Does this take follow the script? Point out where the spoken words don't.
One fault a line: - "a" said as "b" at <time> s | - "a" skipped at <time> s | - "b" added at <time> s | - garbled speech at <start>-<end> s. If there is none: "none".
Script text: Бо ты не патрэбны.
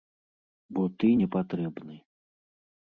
none